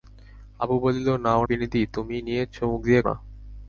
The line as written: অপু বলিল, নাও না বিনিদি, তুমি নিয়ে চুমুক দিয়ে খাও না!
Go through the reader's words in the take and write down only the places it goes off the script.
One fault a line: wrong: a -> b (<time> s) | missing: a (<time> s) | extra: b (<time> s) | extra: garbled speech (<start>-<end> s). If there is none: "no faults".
missing: না (1.4 s)
missing: খাও (3.0 s)